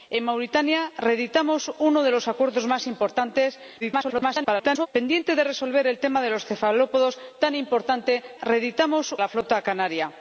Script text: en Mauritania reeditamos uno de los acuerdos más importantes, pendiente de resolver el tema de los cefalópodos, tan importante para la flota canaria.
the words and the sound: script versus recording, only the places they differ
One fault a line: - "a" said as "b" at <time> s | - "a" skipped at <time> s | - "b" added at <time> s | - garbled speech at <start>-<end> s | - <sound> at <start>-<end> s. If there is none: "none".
- garbled speech at 3.8-4.9 s
- "para" said as "reeditamos" at 8.4 s